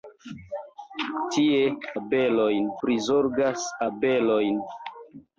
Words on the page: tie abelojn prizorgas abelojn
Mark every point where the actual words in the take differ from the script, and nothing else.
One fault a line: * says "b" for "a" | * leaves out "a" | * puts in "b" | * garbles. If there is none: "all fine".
all fine